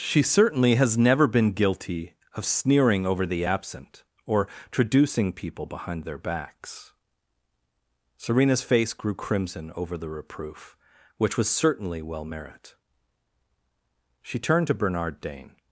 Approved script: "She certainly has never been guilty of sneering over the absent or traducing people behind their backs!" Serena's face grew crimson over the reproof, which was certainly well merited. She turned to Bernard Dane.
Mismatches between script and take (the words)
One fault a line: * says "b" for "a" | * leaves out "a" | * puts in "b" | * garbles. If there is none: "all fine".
* says "merit" for "merited"